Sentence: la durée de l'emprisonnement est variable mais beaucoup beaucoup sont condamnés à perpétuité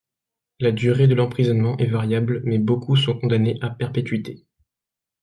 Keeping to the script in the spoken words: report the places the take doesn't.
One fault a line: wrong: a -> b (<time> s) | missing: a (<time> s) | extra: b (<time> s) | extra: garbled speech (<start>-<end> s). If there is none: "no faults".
missing: beaucoup (3.0 s)